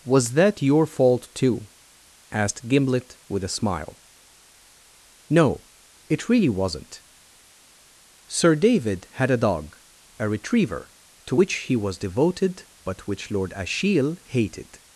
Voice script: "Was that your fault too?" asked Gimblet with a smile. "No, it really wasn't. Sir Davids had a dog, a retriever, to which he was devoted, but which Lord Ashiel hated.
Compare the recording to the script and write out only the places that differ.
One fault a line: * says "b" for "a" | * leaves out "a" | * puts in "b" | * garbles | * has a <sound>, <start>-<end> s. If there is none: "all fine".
* says "David" for "Davids"